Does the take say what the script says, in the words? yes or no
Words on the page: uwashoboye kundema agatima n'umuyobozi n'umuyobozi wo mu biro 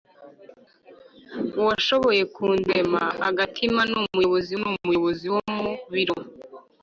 yes